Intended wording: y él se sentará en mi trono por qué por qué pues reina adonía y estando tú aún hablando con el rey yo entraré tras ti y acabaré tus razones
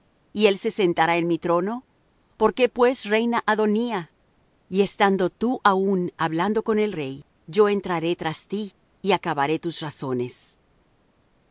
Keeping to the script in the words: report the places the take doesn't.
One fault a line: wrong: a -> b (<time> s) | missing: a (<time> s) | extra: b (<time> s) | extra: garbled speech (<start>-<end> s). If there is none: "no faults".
missing: por qué (2.7 s)